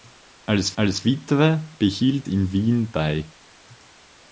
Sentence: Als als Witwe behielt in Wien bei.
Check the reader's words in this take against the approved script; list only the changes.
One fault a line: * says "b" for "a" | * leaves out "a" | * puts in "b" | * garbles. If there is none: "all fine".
all fine